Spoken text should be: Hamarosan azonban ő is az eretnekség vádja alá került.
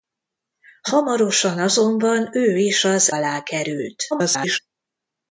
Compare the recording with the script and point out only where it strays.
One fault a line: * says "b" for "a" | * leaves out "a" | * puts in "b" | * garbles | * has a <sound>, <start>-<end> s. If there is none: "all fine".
* leaves out "eretnekség vádja"
* garbles